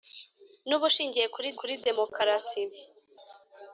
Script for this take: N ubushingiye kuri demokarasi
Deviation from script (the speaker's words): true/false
true